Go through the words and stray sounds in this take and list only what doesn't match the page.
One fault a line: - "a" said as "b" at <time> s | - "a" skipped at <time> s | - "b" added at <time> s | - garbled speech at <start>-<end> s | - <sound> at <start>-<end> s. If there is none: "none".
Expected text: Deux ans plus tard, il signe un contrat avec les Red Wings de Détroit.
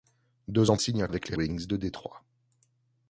- "plus tard il" skipped at 0.8 s
- "contrat" skipped at 1.1 s
- "Red" skipped at 1.4 s